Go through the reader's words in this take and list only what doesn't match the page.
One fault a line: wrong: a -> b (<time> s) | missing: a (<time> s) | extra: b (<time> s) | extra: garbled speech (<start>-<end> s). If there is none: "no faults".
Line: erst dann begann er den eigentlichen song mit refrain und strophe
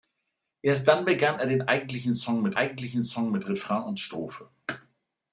extra: eigentlichen song mit (2.6 s)